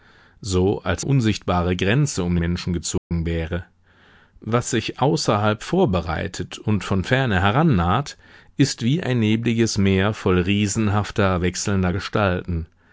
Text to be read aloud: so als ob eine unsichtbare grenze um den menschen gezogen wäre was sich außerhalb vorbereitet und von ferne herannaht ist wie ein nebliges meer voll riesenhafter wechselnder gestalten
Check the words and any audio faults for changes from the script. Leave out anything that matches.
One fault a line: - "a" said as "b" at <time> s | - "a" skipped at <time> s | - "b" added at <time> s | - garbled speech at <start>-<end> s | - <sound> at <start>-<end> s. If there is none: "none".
- "ob eine" skipped at 1.1 s
- "den" skipped at 2.4 s
- dropout at 3.0-3.1 s